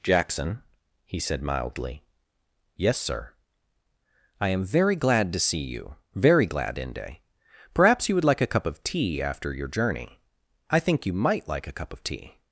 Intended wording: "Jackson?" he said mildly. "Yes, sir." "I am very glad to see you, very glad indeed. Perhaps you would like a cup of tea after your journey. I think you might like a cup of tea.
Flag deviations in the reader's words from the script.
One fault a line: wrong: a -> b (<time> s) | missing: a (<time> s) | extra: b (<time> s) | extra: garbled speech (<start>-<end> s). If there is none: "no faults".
wrong: indeed -> inde (6.8 s)